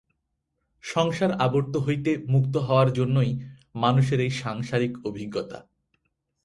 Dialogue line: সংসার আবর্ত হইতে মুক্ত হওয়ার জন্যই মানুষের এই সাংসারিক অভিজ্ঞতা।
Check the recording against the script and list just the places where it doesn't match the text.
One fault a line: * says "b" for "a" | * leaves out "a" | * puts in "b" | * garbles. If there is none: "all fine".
all fine